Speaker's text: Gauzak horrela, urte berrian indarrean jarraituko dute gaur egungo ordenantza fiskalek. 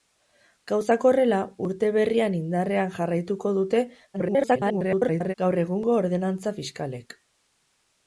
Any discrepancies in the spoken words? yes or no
yes